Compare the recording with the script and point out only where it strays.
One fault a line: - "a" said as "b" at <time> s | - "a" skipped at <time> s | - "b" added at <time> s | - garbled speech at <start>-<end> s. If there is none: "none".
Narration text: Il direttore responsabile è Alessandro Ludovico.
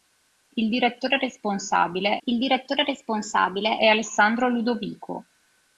- "il direttore responsabile" added at 2.3 s